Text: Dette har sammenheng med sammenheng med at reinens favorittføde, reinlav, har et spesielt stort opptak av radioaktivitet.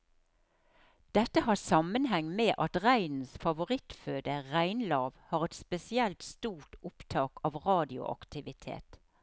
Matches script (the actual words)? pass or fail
fail